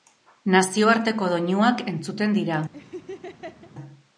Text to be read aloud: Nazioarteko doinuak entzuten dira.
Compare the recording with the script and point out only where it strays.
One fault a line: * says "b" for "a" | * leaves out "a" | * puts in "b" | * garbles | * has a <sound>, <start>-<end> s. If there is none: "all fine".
* has a laugh, 2.7-3.7 s